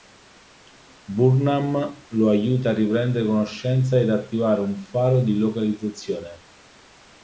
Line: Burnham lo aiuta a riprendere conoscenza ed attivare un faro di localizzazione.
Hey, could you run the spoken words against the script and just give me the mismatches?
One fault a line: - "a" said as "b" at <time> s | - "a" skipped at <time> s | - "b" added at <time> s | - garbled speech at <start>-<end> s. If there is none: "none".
none